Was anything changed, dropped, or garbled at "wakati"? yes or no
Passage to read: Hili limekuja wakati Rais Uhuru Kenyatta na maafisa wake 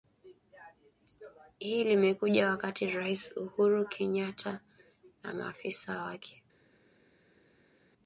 no